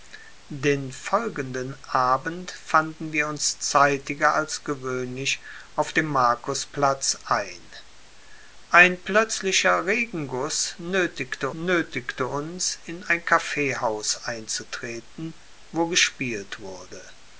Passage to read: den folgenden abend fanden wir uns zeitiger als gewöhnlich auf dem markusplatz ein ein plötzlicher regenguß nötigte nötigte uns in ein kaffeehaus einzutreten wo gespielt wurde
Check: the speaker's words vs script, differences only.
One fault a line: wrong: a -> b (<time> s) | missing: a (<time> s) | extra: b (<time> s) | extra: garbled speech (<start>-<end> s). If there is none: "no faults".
no faults